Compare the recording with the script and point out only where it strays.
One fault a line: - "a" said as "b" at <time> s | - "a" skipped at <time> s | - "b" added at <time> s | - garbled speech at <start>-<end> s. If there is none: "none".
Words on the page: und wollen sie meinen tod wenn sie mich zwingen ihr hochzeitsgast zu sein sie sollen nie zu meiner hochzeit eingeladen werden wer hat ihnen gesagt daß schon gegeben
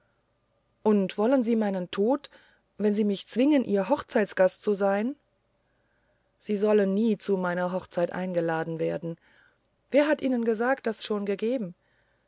none